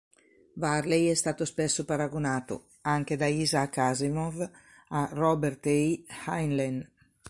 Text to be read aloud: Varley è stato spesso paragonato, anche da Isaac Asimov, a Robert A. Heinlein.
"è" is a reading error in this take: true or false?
false